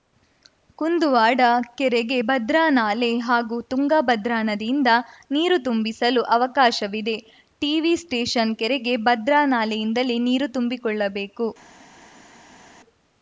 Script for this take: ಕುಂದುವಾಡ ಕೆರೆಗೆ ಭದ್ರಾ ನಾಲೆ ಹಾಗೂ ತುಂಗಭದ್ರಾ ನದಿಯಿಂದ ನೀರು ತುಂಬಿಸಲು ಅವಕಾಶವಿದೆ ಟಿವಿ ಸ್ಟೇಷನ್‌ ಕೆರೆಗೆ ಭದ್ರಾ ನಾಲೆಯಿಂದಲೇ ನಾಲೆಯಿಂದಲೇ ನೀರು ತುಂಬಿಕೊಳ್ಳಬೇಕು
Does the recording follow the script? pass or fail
fail